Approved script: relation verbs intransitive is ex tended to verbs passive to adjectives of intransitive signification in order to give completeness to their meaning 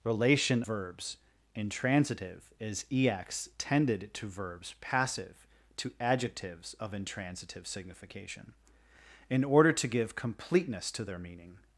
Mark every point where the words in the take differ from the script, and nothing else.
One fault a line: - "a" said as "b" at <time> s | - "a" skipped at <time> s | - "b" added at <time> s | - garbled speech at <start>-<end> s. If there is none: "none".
none